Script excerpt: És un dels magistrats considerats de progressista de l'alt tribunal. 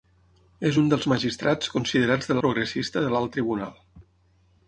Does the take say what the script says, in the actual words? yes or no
yes